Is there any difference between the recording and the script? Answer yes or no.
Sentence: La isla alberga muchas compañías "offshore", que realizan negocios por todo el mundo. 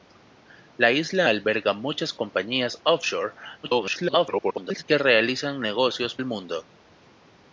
yes